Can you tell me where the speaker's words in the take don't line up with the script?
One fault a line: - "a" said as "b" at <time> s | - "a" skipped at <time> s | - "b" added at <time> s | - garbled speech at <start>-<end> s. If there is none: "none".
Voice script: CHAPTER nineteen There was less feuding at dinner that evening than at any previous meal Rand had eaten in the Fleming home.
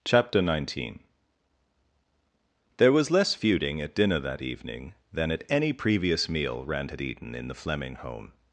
none